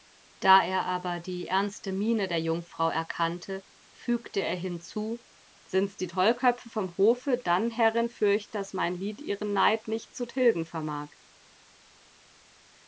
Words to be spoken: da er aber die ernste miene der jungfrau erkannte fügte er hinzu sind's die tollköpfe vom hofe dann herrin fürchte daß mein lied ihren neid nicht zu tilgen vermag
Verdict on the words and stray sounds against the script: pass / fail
pass